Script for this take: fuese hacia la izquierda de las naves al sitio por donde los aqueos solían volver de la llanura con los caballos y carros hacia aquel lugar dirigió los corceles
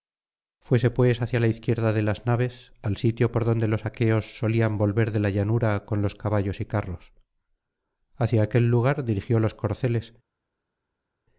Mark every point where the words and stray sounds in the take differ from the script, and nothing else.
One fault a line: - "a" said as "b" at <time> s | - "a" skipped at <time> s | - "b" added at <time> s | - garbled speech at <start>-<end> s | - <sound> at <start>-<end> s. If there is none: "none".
- "pues" added at 0.9 s